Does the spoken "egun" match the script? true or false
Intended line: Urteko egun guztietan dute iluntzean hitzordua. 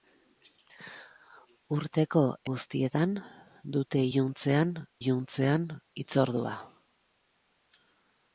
false